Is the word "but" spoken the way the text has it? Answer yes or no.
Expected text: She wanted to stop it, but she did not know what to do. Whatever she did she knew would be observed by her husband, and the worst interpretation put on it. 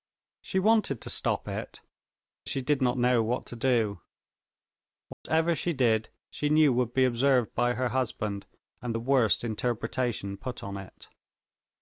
no